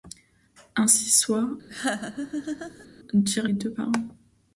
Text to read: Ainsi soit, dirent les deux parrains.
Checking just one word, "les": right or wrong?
wrong